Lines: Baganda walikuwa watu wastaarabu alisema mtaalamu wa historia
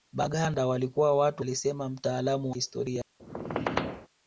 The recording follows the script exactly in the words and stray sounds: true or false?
false